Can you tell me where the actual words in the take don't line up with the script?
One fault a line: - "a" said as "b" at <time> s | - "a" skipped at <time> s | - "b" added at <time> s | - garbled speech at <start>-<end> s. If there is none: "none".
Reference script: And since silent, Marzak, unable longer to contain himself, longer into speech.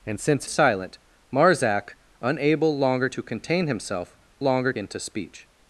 none